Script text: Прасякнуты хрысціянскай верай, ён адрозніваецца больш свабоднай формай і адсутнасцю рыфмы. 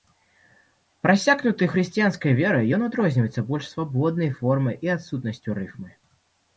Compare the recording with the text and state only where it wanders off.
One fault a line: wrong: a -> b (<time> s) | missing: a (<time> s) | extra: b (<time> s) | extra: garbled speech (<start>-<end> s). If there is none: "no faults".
no faults